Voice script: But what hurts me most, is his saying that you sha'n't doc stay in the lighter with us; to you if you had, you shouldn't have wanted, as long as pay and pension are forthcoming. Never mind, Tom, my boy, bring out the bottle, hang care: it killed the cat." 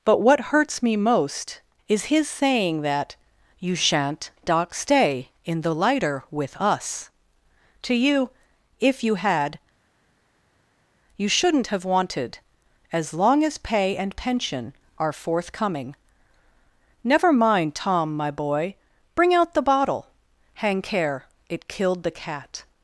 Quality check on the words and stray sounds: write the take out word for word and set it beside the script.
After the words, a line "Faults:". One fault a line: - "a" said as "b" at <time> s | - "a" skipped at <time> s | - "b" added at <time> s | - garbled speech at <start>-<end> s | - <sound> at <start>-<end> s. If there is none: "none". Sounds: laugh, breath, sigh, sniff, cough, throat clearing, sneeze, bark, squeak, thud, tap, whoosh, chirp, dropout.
But what hurts me most, is his saying that you sha'n't doc stay in the lighter with us; to you if you had, you shouldn't have wanted, as long as pay and pension are forthcoming. Never mind, Tom, my boy, bring out the bottle, hang care: it killed the cat."
Faults:
none